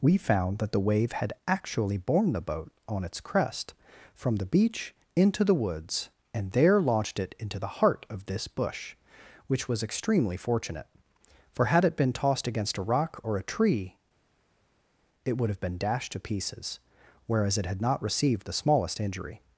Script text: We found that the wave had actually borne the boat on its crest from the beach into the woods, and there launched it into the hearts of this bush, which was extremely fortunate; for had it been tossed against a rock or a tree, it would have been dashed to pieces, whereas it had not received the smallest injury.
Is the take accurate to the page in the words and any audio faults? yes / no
no